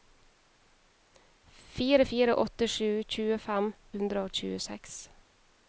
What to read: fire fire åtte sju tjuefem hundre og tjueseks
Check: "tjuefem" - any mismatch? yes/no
no